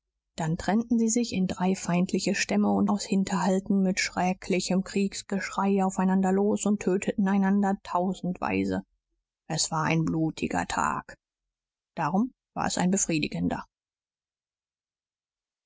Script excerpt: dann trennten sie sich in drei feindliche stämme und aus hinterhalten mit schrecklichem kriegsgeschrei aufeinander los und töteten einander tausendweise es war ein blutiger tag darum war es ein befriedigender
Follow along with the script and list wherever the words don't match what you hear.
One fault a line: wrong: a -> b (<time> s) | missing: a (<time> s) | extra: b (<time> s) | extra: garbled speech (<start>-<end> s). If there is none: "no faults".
no faults